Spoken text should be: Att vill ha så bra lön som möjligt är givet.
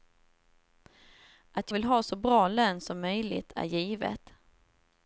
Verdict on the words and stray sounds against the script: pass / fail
pass